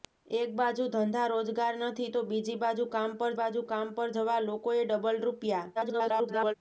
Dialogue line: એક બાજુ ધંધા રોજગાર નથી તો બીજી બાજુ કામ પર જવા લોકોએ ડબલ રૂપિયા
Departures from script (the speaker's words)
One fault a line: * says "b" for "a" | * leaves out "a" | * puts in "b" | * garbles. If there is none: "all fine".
* puts in "બાજુ કામ પર"
* garbles